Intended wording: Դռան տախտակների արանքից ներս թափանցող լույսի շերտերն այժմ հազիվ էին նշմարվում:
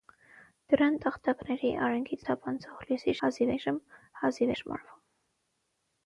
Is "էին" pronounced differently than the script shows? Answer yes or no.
yes